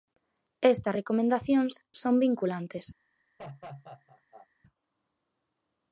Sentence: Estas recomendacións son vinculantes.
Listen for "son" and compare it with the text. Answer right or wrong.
right